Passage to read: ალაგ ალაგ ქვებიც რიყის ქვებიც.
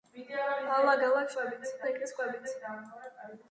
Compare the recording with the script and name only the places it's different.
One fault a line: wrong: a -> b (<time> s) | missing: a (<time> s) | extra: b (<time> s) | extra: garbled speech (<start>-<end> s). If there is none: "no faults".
no faults